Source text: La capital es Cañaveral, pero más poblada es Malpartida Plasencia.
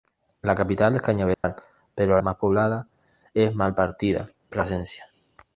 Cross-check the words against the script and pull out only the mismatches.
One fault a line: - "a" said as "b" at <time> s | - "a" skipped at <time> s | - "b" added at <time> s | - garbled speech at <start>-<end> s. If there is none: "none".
none